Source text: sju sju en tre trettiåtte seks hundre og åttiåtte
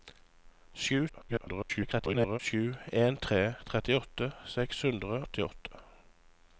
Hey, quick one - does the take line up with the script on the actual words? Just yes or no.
no